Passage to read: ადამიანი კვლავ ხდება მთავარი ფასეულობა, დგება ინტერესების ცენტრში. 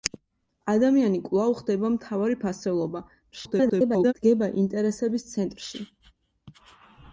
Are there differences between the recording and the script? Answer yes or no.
yes